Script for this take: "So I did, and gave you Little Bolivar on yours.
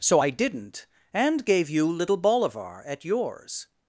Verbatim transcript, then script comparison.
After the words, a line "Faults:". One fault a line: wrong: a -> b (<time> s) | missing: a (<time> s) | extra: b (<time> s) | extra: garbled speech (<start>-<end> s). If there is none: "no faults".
"So I didn't, and gave you Little Bolivar at yours.
Faults:
wrong: did -> didn't (0.3 s)
wrong: on -> at (2.9 s)